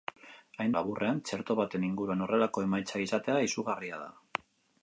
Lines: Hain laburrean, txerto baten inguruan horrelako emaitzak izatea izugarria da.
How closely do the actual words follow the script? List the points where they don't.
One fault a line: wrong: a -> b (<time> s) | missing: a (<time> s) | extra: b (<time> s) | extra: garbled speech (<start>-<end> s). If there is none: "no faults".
no faults